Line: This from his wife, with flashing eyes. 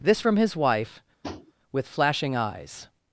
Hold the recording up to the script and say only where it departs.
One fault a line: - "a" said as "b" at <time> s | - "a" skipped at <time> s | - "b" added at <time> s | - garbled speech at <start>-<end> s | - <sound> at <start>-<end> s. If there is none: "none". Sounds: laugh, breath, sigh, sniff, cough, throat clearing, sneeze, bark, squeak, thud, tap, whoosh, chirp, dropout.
- tap at 1.2-1.5 s